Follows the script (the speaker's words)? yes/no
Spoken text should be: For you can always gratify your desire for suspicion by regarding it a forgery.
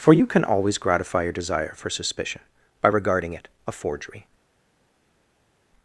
yes